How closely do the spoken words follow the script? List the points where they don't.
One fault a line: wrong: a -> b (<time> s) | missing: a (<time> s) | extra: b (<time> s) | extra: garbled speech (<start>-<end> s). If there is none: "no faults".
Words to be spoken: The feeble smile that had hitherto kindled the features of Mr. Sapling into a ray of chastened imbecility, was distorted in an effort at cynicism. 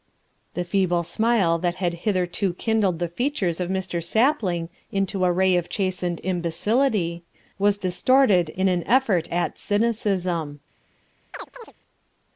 no faults